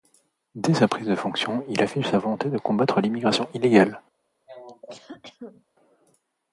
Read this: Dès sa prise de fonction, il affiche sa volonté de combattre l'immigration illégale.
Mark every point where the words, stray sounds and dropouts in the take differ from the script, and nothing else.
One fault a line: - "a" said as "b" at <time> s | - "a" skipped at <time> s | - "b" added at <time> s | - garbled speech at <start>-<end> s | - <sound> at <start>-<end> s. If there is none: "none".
- cough at 4.5-5.6 s